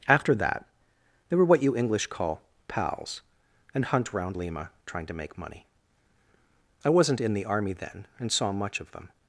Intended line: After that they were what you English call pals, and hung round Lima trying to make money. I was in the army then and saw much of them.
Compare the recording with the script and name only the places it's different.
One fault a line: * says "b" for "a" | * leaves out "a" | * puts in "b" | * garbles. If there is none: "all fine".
* says "hunt" for "hung"
* says "wasn't" for "was"